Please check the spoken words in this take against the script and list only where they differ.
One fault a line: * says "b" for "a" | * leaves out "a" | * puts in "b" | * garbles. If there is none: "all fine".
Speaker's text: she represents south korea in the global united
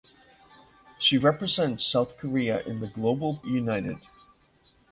all fine